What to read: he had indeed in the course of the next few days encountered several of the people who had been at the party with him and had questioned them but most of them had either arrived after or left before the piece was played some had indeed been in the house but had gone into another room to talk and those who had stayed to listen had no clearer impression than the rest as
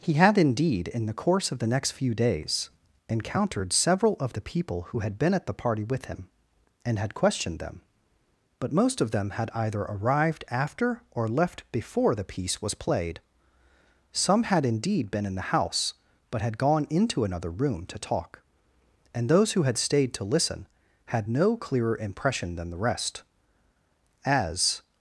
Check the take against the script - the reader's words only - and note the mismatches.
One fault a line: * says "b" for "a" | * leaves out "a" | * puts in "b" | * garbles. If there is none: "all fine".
all fine